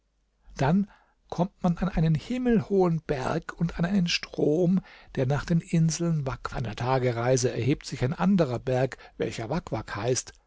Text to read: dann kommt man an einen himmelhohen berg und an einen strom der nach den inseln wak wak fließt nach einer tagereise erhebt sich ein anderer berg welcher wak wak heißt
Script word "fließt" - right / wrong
wrong